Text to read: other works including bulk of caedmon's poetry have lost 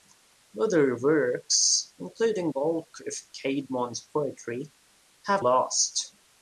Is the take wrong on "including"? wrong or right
right